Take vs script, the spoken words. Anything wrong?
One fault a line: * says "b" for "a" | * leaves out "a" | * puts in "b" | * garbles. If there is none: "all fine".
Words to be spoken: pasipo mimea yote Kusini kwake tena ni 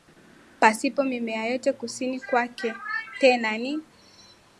all fine